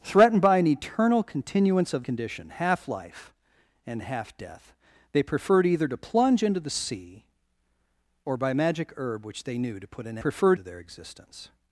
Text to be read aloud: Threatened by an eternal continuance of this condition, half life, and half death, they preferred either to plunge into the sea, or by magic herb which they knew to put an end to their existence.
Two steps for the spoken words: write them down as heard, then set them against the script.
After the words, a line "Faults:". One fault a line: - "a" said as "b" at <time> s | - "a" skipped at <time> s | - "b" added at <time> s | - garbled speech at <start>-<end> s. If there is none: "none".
Threatened by an eternal continuance of condition, half life, and half death, they preferred either to plunge into the sea, or by magic herb which they knew to put an preferred to their existence.
Faults:
- "this" skipped at 2.0 s
- "end" said as "preferred" at 10.2 s